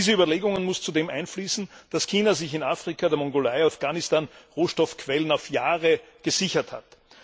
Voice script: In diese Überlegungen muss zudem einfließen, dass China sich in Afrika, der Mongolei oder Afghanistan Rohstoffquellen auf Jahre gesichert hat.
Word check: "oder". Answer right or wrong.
wrong